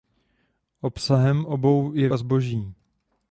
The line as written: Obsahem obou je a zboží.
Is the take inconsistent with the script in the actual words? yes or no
no